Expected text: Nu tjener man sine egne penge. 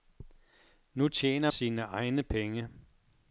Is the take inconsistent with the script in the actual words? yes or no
yes